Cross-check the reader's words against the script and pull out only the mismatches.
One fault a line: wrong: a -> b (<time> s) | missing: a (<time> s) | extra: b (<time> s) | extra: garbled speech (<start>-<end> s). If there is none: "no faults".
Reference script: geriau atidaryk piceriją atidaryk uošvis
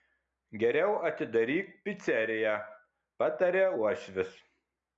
wrong: atidaryk -> pataria (3.2 s)